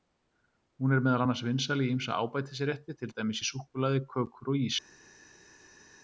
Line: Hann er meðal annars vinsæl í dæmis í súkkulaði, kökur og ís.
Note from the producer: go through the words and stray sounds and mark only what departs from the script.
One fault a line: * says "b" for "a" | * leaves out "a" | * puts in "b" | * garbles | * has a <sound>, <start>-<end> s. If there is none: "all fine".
* says "Hún" for "Hann"
* puts in "ýmsa ábætisrétti til"